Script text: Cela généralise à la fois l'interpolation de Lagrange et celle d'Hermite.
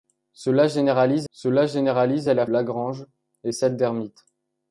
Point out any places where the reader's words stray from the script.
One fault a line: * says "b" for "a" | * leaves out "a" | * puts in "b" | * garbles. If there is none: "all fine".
* puts in "cela généralise"
* leaves out "fois l'interpolation de"